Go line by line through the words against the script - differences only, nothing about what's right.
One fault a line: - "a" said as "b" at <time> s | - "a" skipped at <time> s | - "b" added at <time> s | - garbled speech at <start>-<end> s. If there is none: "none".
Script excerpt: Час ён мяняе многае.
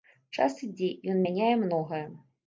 - "ідзе" added at 0.7 s